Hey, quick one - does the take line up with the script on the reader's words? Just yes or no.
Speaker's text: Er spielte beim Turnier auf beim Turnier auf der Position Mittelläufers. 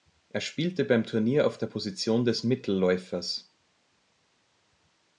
no